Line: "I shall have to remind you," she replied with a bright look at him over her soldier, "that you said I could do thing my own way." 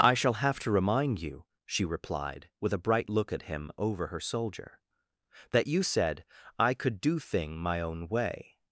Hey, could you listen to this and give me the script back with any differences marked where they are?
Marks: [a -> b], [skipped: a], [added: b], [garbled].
"I shall have to remind you," she replied with a bright look at him over her soldier, "that you said I could do thing my own way."